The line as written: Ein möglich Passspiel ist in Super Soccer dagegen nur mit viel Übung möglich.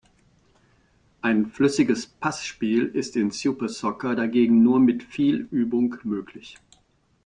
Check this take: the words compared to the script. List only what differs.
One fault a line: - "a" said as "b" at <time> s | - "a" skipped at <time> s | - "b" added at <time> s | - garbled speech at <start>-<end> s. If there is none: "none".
- "möglich" said as "flüssiges" at 1.4 s